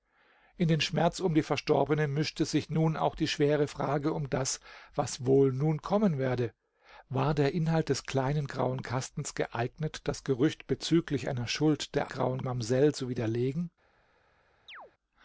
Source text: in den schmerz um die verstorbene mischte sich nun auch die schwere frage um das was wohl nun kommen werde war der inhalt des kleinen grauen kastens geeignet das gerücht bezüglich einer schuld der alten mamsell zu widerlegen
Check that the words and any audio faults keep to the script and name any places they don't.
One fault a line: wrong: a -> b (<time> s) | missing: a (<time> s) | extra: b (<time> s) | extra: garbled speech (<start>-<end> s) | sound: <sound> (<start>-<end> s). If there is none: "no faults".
wrong: alten -> grauen (12.1 s)
sound: chirp (14.7-14.9 s)